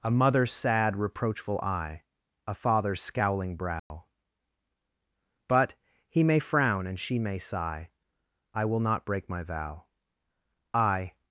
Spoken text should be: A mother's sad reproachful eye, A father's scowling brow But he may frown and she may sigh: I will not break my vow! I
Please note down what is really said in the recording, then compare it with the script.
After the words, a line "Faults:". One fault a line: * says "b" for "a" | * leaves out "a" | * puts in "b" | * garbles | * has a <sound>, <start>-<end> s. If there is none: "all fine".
A mother's sad reproachful eye, A father's scowling brow But he may frown and she may sigh: I will not break my vow! I
Faults:
* has a dropout, 3.8-3.9 s